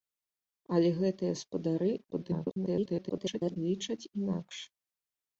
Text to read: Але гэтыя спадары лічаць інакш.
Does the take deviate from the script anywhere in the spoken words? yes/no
yes